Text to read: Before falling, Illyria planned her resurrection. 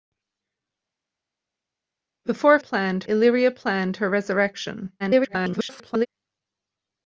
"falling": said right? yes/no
no